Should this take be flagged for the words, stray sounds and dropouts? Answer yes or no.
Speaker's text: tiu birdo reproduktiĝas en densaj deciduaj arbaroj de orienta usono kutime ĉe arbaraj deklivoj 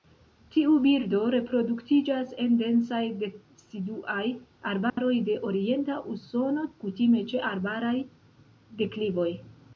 yes